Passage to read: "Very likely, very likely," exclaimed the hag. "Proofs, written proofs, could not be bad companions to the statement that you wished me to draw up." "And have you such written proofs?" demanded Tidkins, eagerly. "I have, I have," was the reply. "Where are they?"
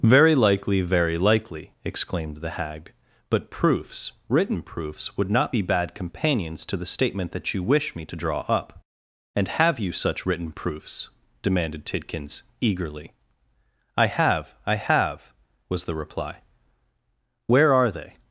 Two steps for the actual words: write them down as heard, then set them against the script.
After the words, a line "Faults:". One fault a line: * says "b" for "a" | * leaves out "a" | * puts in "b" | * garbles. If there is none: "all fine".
"Very likely, very likely," exclaimed the hag. "But proofs, written proofs, would not be bad companions to the statement that you wish me to draw up." "And have you such written proofs?" demanded Tidkins, eagerly. "I have, I have," was the reply. "Where are they?"
Faults:
* puts in "But"
* says "would" for "could"
* says "wish" for "wished"